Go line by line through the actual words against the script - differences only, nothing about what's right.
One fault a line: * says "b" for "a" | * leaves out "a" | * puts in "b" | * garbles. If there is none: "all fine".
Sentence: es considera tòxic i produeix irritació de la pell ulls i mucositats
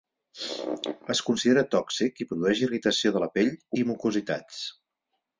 * leaves out "ulls"